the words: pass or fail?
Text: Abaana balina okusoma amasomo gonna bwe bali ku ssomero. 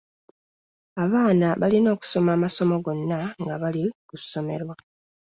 fail